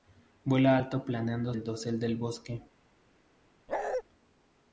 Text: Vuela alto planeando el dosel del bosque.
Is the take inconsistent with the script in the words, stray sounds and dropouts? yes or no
yes